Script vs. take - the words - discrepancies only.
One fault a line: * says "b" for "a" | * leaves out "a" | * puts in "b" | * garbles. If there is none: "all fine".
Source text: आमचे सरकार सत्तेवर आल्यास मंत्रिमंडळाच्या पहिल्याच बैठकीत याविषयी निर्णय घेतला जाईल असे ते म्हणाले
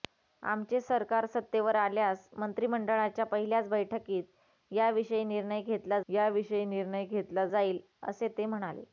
* puts in "याविषयी निर्णय घेतला"